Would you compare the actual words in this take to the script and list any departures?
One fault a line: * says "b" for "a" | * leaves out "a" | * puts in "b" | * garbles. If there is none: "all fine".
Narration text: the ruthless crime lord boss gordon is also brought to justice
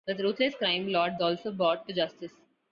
* leaves out "boss gordon is"